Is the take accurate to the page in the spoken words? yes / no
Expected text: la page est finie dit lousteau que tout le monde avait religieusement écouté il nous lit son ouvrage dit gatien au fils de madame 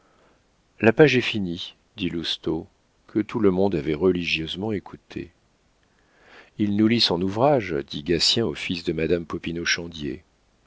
yes